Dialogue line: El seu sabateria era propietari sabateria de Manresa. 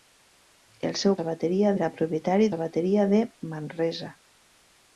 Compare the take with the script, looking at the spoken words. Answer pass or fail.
pass